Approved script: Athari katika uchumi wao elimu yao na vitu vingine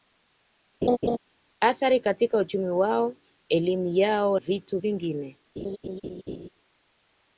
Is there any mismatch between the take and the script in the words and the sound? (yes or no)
yes